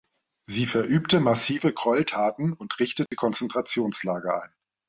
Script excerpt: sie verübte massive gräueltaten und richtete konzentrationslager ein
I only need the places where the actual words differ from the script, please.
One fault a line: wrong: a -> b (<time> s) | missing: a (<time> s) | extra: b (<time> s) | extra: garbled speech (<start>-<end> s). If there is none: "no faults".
no faults